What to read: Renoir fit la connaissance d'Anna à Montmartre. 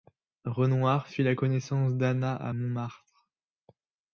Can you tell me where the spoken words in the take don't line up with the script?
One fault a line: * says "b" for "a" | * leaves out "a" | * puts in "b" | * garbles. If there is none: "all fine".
all fine